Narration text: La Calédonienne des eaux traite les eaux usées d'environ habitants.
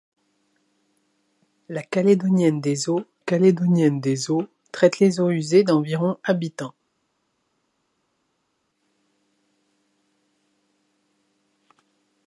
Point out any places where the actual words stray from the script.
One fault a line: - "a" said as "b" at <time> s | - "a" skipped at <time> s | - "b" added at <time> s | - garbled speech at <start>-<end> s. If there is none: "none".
- "Calédonienne des eaux" added at 3.2 s